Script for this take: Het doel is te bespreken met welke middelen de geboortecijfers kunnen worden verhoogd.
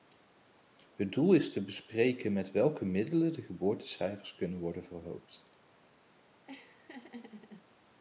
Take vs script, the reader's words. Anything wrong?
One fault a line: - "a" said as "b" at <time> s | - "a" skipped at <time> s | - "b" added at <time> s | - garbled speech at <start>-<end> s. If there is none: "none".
none